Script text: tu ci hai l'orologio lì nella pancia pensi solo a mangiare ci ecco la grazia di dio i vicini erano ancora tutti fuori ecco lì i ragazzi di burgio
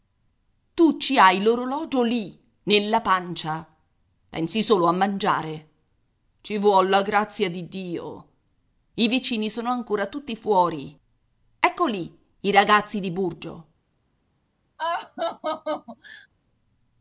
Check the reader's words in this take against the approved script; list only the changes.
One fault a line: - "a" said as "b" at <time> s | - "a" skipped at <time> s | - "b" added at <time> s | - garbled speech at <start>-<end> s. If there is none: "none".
- "ecco" said as "vuol" at 6.6 s
- "erano" said as "sono" at 9.5 s